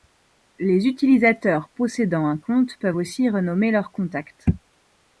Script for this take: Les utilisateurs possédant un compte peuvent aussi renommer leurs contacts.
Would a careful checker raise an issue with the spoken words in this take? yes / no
no